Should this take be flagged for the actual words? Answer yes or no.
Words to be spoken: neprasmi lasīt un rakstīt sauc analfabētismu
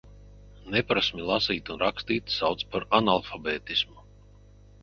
yes